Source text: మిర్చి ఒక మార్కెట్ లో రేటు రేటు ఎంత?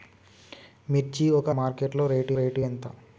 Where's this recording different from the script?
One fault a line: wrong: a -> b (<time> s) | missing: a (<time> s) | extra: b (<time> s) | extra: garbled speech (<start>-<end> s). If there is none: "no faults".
no faults